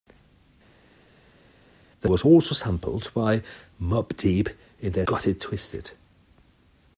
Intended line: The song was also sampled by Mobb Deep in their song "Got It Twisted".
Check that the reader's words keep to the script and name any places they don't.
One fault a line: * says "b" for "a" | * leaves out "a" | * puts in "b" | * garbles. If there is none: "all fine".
* leaves out "song"
* leaves out "song"